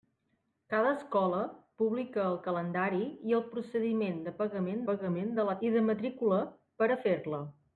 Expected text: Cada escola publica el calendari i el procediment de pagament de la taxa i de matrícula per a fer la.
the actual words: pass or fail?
fail